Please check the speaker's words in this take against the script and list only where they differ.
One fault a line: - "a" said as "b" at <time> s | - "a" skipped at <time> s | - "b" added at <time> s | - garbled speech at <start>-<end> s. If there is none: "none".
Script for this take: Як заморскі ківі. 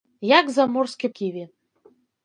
none